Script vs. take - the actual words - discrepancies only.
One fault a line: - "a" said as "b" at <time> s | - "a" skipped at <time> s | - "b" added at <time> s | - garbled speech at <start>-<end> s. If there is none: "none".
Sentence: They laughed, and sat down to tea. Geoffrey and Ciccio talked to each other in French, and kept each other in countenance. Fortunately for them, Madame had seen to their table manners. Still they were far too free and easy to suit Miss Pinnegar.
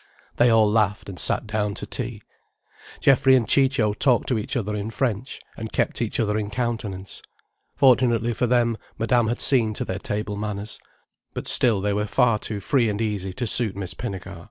- "all" added at 0.5 s
- "But" added at 11.3 s